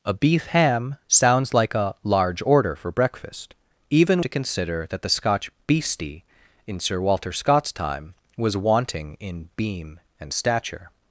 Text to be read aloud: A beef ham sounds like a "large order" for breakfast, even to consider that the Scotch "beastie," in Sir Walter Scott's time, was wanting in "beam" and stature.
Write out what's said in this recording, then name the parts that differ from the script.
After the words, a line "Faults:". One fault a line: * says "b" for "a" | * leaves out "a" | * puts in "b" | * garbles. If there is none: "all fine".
A beef ham sounds like a "large order" for breakfast, even to consider that the Scotch "beastie," in Sir Walter Scott's time, was wanting in "beam" and stature.
Faults:
all fine